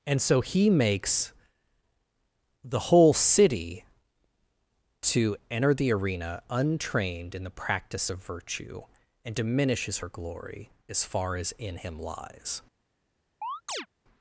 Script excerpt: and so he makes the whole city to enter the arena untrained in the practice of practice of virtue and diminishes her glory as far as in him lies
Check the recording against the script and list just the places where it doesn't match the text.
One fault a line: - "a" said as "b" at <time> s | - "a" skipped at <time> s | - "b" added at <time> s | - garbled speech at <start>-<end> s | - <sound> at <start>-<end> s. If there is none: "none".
- "practice of" skipped at 8.2 s
- chirp at 13.4-13.9 s